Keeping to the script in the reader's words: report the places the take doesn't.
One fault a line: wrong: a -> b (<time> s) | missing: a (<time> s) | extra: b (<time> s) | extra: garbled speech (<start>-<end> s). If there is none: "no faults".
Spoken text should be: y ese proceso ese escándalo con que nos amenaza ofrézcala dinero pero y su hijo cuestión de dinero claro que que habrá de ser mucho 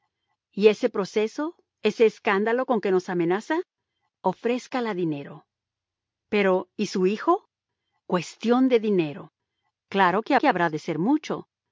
no faults